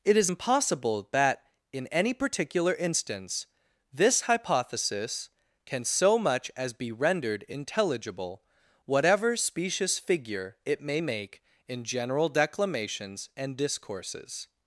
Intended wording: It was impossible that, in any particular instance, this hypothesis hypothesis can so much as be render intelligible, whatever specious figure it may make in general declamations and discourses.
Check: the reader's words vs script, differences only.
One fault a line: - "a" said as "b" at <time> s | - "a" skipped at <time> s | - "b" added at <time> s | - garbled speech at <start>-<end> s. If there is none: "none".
- "was" said as "is" at 0.2 s
- "hypothesis" skipped at 5.3 s
- "render" said as "rendered" at 6.9 s